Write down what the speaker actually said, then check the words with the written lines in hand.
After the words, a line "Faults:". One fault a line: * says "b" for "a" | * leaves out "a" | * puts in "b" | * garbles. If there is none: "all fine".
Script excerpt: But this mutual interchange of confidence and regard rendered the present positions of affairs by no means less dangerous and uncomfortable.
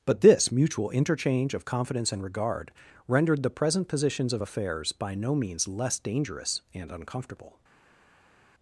But this mutual interchange of confidence and regard rendered the present positions of affairs by no means less dangerous and uncomfortable.
Faults:
all fine